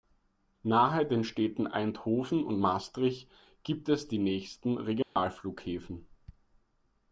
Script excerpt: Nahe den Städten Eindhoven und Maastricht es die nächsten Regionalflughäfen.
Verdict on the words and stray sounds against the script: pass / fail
fail